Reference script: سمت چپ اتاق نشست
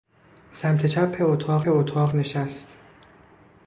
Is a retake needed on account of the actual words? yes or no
yes